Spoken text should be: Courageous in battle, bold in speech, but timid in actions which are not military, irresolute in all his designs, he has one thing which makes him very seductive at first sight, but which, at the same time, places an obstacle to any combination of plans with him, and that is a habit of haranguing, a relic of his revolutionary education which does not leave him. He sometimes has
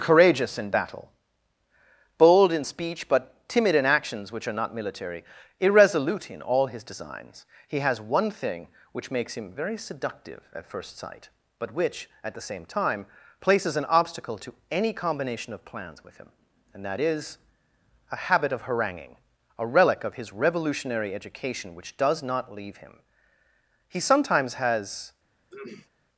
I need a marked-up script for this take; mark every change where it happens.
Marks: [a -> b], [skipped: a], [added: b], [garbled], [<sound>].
Courageous in battle, bold in speech, but timid in actions which are not military, irresolute in all his designs, he has one thing which makes him very seductive at first sight, but which, at the same time, places an obstacle to any combination of plans with him, and that is a habit of haranguing, a relic of his revolutionary education which does not leave him. He sometimes has [throat clearing]